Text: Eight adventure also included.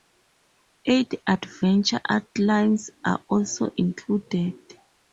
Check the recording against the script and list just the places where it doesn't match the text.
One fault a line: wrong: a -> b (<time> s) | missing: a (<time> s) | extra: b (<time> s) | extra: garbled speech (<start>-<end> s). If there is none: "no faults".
extra: outlines are (2.1 s)